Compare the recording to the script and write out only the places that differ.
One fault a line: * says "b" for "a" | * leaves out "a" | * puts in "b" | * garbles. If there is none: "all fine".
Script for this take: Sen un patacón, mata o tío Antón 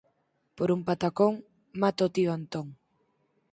* says "Por" for "Sen"